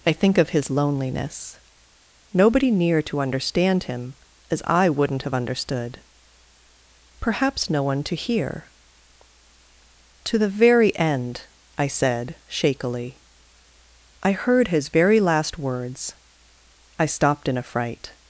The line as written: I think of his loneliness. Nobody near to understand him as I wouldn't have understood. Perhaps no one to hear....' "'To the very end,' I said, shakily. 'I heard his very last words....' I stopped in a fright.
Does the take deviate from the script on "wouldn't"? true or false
false